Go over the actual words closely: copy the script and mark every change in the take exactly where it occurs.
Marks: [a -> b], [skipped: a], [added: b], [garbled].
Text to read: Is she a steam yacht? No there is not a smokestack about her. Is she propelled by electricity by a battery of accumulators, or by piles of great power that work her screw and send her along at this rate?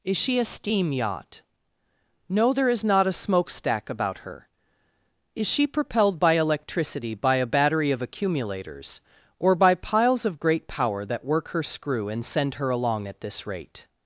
Is she a steam yacht? No there is not a smokestack about her. Is she propelled by electricity by a battery of accumulators, or by piles of great power that work her screw and send her along at this rate?